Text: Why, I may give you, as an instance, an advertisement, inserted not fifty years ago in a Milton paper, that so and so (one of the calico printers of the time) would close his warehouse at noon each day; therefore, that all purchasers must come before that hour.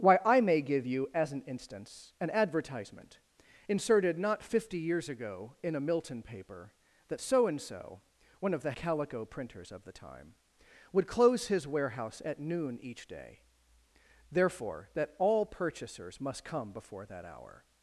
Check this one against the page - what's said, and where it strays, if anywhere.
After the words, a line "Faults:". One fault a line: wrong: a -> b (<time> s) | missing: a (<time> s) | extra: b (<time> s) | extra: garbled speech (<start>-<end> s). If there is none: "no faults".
Why, I may give you, as an instance, an advertisement, inserted not fifty years ago in a Milton paper, that so and so (one of the calico printers of the time) would close his warehouse at noon each day; therefore, that all purchasers must come before that hour.
Faults:
no faults